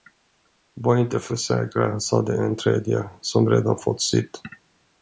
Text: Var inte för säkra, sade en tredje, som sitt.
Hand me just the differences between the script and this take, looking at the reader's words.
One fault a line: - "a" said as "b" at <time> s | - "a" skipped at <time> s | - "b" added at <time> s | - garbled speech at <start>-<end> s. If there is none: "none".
- "redan fått" added at 3.5 s